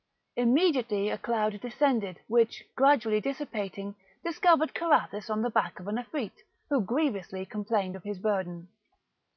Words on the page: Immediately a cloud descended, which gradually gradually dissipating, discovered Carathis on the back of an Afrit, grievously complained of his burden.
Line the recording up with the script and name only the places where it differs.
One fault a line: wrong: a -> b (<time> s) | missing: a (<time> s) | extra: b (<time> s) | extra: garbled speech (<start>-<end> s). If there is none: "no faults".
missing: gradually (3.2 s)
extra: who (6.7 s)